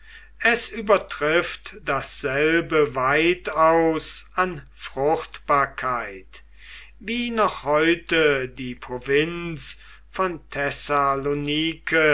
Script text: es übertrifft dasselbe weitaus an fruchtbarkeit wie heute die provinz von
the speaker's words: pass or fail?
fail